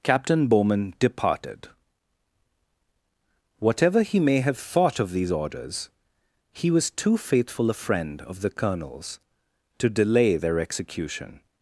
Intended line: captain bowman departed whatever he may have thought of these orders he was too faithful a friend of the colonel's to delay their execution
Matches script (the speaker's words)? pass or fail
pass